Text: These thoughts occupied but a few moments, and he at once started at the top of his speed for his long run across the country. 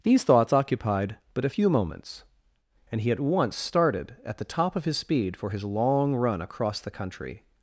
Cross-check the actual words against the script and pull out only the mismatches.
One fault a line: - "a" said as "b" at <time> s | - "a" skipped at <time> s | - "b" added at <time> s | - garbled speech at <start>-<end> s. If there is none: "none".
none